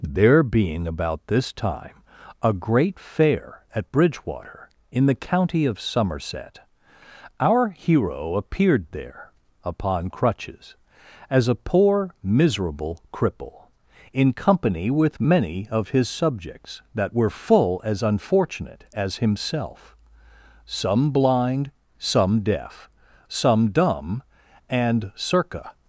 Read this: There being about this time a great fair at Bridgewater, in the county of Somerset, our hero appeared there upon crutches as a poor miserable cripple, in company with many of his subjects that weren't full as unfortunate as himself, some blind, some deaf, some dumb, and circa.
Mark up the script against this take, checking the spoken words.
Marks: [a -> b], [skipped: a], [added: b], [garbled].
There being about this time a great fair at Bridgewater, in the county of Somerset, our hero appeared there upon crutches as a poor miserable cripple, in company with many of his subjects that [weren't -> were] full as unfortunate as himself, some blind, some deaf, some dumb, and circa.